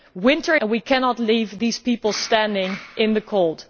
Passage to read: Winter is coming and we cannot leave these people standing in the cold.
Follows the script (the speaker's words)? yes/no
no